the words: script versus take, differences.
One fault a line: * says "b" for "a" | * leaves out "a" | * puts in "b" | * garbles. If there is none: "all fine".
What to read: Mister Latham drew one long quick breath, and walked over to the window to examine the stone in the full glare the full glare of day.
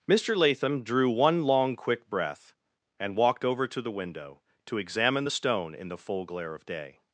* leaves out "the full glare"